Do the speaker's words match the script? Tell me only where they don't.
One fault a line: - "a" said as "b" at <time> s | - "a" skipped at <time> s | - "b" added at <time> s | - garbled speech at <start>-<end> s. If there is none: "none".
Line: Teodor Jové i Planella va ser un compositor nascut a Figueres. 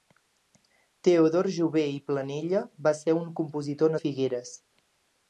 - "nascut" skipped at 4.0 s